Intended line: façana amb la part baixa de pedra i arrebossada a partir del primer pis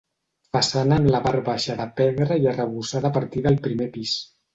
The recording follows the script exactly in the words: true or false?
true